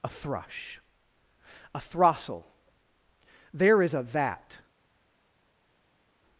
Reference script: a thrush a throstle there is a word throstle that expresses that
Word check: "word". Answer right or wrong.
wrong